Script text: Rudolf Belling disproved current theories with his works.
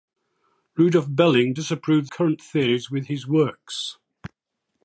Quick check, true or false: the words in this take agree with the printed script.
true